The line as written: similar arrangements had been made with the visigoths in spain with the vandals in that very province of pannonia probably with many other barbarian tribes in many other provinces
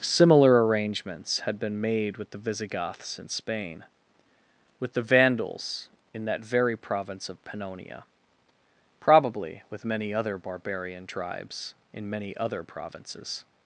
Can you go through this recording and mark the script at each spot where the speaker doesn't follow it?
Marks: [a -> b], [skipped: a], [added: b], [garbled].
similar arrangements had been made with the visigoths in spain with the vandals in that very province of pannonia probably with many other barbarian tribes in many other provinces